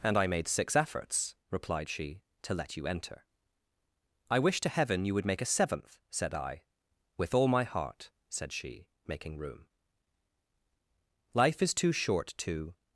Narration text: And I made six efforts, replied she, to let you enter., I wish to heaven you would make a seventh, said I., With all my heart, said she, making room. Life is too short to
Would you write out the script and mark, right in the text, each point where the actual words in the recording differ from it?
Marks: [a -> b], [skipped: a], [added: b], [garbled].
And I made six efforts, replied she, to let you enter., I wish to heaven you would make a seventh, said I., With all my heart, said she, making room. Life is too short to